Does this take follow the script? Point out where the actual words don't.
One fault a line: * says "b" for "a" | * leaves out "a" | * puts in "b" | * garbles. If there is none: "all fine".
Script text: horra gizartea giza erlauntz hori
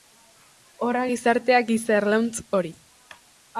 all fine